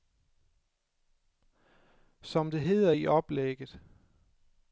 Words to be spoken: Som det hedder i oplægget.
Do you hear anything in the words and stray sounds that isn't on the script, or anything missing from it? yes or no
no